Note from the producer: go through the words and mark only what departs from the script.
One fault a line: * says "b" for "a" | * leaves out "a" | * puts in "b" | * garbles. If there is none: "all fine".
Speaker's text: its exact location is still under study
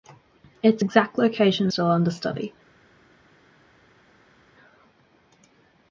* leaves out "is"